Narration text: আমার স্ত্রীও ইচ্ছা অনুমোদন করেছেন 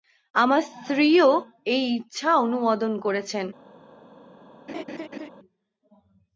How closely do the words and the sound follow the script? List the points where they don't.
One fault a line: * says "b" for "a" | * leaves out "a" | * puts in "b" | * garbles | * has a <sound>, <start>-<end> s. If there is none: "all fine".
* puts in "এই"
* has a laugh, 4.7-5.3 s